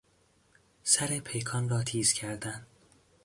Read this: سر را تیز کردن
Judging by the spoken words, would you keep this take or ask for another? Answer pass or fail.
fail